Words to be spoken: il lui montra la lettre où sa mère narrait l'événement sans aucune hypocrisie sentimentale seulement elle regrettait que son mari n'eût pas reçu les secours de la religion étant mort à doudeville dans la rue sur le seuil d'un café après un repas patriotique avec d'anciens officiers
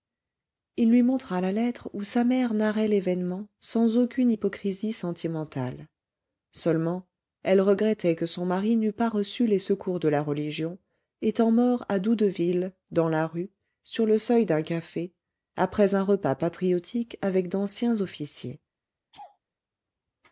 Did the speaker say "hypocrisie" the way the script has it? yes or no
yes